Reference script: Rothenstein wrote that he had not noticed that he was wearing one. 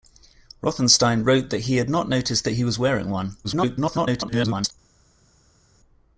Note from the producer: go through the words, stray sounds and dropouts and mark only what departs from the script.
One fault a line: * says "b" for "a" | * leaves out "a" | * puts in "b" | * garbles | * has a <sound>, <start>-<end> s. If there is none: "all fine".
* garbles